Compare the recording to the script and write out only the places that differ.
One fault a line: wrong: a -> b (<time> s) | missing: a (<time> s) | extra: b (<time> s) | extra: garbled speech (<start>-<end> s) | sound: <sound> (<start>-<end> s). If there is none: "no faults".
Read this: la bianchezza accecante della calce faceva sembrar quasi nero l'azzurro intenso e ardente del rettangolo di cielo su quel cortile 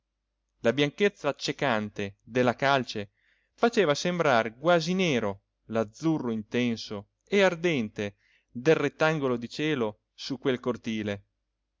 no faults